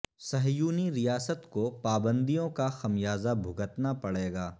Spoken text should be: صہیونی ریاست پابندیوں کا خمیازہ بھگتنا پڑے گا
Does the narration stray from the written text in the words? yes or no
yes